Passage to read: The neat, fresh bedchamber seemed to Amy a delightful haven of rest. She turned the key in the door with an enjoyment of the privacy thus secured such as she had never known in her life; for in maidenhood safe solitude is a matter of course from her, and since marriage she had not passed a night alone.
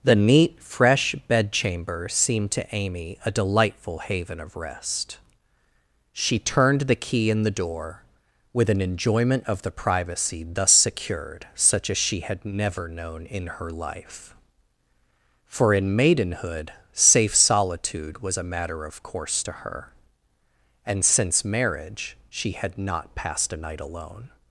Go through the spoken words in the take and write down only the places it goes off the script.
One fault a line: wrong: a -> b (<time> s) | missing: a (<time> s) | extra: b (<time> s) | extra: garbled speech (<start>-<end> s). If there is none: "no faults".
wrong: is -> was (18.2 s)
wrong: from -> to (19.4 s)